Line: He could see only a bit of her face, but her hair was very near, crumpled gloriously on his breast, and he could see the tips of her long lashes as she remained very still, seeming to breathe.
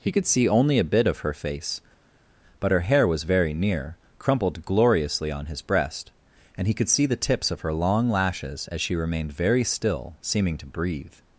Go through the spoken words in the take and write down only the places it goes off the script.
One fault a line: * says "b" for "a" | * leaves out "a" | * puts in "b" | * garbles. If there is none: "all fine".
all fine